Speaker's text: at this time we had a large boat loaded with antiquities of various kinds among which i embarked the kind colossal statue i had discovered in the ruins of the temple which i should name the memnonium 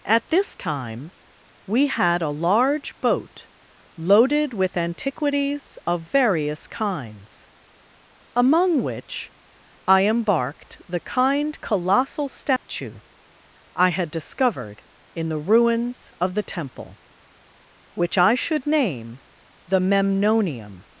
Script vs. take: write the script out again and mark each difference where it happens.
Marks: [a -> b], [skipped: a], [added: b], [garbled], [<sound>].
at this time we had a large boat loaded with antiquities of various kinds among which i embarked the kind colossal statue [dropout] i had discovered in the ruins of the temple which i should name the memnonium